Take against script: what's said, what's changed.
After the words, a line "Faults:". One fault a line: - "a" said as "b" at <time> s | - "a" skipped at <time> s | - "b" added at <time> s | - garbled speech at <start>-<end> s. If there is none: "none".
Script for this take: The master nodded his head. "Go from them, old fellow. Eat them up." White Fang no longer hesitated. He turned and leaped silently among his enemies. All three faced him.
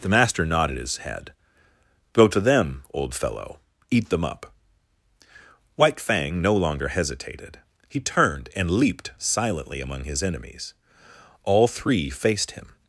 The master nodded his head. "Go to them, old fellow. Eat them up." White Fang no longer hesitated. He turned and leaped silently among his enemies. All three faced him.
Faults:
- "from" said as "to" at 2.3 s